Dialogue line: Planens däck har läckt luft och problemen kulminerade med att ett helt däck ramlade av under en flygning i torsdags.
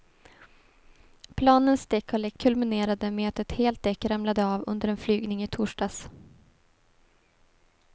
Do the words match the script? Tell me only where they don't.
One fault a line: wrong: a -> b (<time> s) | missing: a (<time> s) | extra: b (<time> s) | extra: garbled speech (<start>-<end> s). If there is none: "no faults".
missing: luft och problemen (2.4 s)